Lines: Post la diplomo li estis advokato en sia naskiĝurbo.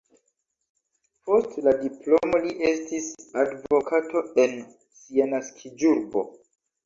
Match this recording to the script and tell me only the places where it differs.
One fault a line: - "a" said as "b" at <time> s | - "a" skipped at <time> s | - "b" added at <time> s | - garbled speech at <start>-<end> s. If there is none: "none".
none